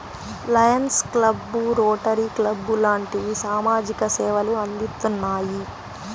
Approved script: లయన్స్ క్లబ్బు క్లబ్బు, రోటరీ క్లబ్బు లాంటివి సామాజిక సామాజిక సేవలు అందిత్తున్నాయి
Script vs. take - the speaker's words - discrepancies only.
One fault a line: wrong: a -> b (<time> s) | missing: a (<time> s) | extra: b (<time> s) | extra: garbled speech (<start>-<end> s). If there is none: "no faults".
missing: క్లబ్బు (1.6 s)
missing: సామాజిక (4.1 s)